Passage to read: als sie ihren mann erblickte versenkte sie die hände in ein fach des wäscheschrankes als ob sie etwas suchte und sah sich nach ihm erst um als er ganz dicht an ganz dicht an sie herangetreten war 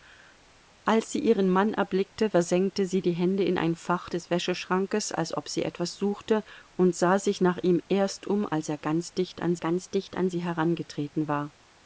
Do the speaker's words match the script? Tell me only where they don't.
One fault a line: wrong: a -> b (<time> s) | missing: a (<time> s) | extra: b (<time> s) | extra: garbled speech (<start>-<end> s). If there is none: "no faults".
no faults